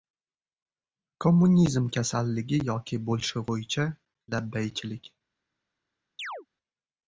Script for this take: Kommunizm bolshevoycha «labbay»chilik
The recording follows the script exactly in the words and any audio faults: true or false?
false